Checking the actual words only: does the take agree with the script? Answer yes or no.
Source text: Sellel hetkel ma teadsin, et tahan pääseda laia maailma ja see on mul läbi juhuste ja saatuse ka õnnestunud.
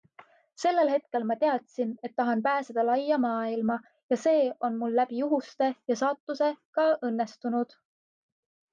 yes